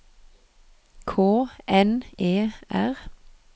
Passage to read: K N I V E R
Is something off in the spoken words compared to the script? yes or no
yes